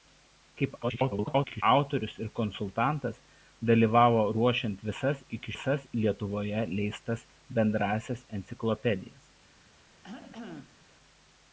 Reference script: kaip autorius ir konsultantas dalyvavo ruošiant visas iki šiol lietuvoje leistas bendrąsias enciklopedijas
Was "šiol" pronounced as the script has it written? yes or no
no